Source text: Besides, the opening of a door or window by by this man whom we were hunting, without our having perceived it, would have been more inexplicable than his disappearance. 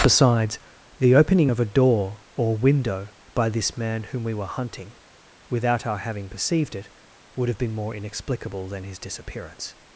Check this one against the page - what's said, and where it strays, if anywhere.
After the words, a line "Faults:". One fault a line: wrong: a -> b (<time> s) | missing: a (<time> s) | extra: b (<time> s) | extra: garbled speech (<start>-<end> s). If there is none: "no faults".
Besides, the opening of a door or window by this man whom we were hunting, without our having perceived it, would have been more inexplicable than his disappearance.
Faults:
missing: by (3.5 s)